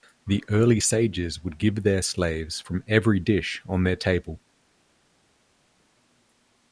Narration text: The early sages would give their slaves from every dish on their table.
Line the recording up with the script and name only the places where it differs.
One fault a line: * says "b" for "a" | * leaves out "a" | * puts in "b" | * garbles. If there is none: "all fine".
all fine